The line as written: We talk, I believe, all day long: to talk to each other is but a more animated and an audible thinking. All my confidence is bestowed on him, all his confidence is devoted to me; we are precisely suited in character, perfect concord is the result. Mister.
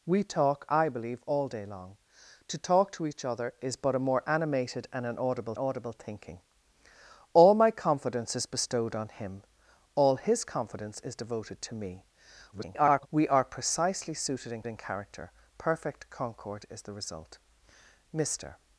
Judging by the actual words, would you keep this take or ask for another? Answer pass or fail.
fail